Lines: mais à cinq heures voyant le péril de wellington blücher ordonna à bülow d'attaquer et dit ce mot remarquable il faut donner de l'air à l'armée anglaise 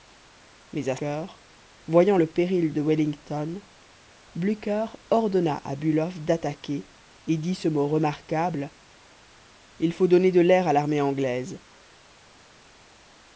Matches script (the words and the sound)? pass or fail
fail